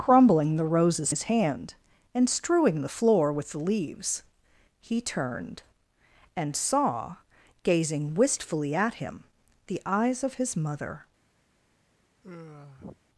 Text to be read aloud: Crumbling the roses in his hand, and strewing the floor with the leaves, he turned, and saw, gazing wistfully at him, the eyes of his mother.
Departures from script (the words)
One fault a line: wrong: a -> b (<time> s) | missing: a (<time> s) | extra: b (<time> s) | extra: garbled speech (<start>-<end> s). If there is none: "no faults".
missing: in (1.1 s)